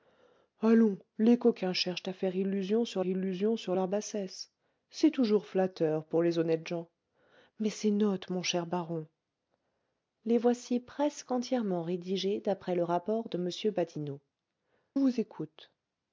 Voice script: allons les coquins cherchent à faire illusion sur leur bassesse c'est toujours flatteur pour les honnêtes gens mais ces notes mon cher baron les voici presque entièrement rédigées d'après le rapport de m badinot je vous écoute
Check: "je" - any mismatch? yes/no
yes